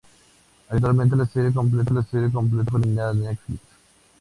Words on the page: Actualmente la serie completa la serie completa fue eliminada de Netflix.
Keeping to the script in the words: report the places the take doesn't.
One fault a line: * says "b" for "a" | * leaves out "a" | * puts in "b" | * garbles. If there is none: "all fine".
all fine